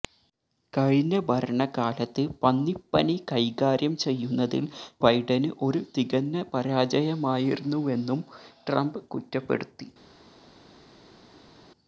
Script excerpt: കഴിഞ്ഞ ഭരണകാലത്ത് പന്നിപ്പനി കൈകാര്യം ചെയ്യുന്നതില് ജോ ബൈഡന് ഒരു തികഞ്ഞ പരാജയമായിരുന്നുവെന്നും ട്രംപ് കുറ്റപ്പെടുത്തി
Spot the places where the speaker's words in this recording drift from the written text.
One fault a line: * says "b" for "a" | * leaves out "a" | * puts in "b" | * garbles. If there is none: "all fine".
* leaves out "ജോ"